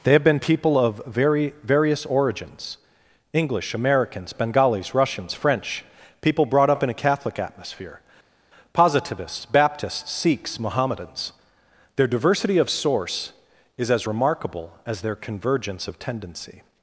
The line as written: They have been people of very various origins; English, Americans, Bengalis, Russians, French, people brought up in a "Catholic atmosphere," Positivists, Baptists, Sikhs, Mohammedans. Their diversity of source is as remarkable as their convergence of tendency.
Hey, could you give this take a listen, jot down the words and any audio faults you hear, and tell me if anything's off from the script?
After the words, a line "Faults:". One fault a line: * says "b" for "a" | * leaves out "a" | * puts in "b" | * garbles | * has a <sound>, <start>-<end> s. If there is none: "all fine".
They have been people of very various origins; English, Americans, Bengalis, Russians, French, people brought up in a "Catholic atmosphere," Positivists, Baptists, Sikhs, Mohammedans. Their diversity of source is as remarkable as their convergence of tendency.
Faults:
all fine